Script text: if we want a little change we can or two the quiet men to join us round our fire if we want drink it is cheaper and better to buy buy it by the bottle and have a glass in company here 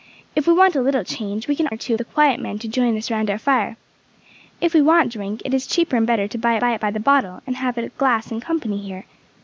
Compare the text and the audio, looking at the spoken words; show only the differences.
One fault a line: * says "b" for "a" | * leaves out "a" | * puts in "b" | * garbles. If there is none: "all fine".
all fine